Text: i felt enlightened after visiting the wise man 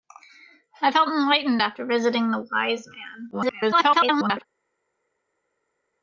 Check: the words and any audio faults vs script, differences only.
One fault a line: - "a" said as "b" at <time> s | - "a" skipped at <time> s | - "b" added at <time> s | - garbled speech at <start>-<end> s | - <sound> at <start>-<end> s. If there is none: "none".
- garbled speech at 3.3-4.4 s